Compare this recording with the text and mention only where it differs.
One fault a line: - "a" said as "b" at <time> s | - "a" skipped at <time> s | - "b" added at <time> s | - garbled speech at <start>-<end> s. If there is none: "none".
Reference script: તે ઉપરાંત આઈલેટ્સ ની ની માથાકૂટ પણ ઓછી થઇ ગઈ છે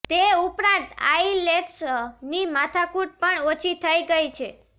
- "ની" skipped at 2.5 s